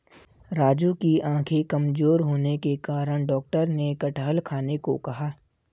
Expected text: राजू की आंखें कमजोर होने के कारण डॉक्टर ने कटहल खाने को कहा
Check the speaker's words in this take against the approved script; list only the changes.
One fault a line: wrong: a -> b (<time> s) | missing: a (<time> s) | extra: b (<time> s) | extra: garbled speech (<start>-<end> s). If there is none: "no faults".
no faults